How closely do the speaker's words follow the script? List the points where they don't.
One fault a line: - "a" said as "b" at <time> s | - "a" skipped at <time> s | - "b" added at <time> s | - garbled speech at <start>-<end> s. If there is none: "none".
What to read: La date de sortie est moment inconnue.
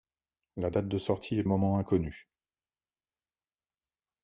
none